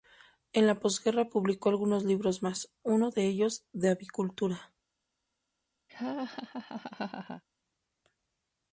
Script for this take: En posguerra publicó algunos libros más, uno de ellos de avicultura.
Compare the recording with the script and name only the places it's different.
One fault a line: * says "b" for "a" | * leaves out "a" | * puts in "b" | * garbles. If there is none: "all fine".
* puts in "la"